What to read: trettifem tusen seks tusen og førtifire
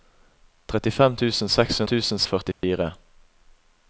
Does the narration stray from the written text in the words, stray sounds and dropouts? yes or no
yes